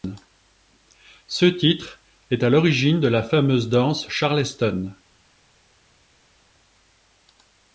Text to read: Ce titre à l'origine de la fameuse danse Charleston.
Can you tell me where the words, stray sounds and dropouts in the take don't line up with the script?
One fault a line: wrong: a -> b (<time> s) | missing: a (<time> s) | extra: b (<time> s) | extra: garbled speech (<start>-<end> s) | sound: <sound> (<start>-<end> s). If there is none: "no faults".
extra: est (2.3 s)